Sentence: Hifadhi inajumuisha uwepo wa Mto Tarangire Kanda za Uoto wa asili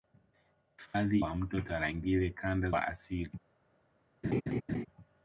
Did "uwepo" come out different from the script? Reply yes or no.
yes